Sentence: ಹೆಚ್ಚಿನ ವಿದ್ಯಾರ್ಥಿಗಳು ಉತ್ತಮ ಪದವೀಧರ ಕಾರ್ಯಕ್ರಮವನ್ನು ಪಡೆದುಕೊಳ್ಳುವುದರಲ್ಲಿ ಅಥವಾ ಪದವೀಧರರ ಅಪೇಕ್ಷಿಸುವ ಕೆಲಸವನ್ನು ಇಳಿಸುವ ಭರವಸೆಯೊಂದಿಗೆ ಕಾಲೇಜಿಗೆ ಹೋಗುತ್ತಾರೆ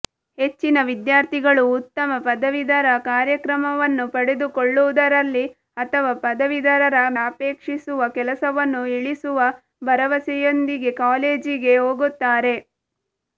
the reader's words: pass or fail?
pass